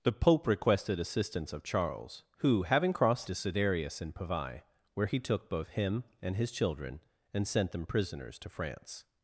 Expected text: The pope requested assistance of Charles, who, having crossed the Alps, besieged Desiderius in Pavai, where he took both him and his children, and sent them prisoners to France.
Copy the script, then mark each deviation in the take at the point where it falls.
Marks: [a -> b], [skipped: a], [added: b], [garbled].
The pope requested assistance of Charles, who, having crossed [skipped: the Alps, besieged] Desiderius in Pavai, where he took both him and his children, and sent them prisoners to France.